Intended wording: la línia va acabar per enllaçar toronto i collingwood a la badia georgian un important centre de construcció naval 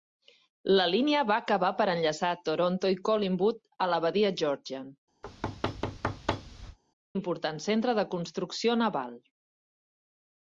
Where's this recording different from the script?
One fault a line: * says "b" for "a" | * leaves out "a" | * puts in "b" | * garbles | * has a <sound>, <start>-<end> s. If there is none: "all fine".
* leaves out "un"
* has a thud, 5.2-6.8 s